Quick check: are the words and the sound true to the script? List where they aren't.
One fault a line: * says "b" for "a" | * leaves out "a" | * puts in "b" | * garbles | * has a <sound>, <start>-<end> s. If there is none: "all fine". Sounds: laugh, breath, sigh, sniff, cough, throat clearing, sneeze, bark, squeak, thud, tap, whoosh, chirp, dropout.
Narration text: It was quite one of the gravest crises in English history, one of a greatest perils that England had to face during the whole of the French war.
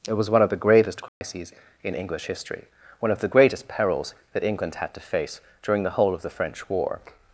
* leaves out "quite"
* has a dropout, 1.1-1.2 s
* says "the" for "a"